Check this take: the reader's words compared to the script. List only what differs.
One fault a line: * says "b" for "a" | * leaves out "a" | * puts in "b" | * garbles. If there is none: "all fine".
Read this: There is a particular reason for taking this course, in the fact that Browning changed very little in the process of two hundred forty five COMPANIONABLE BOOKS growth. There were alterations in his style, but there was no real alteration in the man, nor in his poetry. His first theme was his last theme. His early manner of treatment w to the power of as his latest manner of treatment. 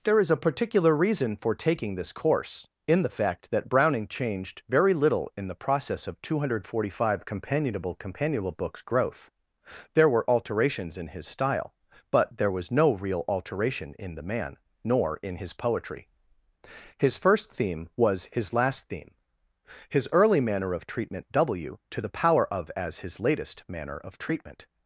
* puts in "COMPANIONABLE"